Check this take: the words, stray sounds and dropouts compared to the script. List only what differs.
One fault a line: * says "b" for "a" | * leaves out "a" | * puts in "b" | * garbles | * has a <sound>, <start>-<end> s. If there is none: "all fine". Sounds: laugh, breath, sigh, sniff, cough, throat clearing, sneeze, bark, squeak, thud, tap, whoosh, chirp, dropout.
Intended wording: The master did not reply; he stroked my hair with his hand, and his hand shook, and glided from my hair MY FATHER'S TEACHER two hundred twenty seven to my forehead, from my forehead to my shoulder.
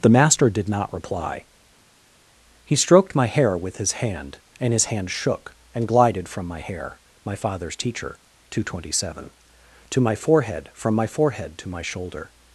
all fine